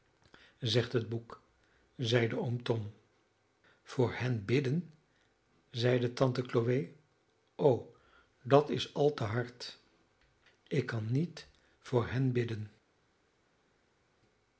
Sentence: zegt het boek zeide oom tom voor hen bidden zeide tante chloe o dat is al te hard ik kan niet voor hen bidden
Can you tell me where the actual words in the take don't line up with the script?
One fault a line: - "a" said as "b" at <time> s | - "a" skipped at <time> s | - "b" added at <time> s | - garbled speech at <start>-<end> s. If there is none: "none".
none